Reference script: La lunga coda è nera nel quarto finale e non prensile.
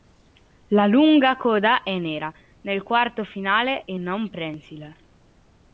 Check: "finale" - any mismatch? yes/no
no